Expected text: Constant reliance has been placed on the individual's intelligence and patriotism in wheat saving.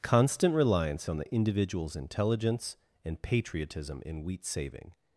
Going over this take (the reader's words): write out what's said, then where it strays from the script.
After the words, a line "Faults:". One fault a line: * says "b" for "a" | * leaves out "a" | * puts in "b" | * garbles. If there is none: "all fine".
Constant reliance on the individual's intelligence and patriotism in wheat saving.
Faults:
* leaves out "has been placed"